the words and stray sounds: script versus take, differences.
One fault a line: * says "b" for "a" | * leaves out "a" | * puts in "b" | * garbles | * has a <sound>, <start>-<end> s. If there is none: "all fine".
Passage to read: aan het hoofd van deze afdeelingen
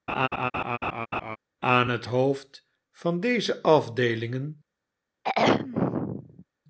* has a laugh, 0.1-1.4 s
* has a throat clearing, 5.2-6.5 s